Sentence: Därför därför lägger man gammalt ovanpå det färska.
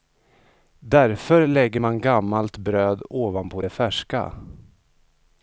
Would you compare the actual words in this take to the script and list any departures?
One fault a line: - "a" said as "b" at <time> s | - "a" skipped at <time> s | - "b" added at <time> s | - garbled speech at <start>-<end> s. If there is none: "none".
- "därför" skipped at 1.5 s
- "bröd" added at 2.6 s